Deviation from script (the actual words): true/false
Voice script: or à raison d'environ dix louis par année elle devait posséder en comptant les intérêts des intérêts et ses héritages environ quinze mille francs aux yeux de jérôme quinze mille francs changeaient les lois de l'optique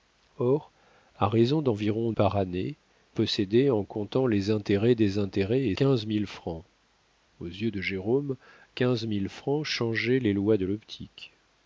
true